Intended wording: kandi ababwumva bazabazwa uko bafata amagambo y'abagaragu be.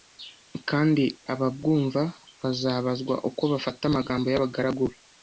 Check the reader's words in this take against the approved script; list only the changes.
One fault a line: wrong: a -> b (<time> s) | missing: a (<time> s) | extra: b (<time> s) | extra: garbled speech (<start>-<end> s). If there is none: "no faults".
no faults